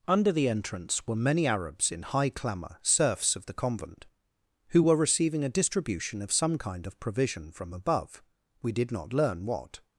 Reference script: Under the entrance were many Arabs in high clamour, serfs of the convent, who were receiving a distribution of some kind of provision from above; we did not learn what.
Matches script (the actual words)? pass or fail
pass